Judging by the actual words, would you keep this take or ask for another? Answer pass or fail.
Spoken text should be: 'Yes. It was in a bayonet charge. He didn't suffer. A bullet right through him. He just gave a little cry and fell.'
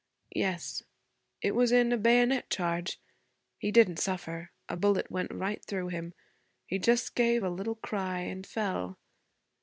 fail